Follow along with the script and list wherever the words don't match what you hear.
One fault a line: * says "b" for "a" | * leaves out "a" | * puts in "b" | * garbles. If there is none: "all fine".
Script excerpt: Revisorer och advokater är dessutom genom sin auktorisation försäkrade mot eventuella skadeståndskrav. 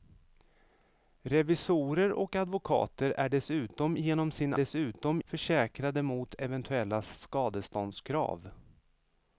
* says "dessutom" for "auktorisation"